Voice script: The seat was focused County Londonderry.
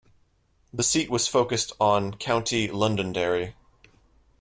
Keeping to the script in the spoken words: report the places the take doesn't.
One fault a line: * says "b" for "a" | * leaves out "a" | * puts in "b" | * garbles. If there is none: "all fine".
* puts in "on"